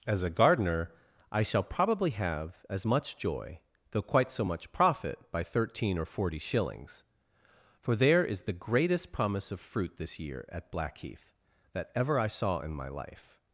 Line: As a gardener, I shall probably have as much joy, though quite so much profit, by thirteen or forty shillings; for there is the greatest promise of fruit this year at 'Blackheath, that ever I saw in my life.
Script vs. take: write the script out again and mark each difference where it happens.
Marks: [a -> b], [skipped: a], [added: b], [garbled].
As a gardener, I shall probably have as much joy, though quite so much profit, by thirteen or forty shillings; for there is the greatest promise of fruit this year at 'Blackheath, that ever I saw in my life.